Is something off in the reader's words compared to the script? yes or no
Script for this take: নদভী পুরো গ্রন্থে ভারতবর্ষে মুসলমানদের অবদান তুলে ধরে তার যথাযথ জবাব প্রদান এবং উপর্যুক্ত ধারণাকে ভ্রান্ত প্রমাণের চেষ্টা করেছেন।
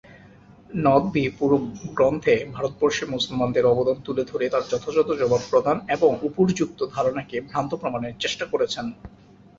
no